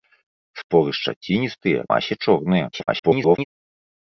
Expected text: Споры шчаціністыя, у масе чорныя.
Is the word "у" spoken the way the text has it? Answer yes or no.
no